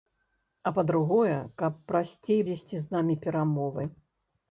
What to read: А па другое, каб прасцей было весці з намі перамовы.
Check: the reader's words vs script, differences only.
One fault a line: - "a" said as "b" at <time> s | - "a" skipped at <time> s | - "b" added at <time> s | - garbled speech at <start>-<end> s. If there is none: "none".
- "было" skipped at 2.4 s